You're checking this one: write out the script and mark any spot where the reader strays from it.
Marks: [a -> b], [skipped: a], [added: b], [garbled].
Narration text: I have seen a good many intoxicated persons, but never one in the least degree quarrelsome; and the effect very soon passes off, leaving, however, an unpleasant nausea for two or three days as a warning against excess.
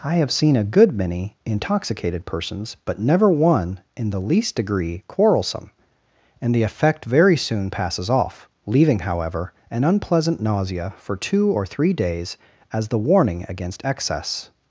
I have seen a good many intoxicated persons, but never one in the least degree quarrelsome; and the effect very soon passes off, leaving, however, an unpleasant nausea for two or three days as [a -> the] warning against excess.